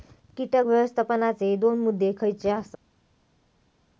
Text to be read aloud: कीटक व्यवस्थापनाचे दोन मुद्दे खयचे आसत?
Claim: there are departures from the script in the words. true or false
false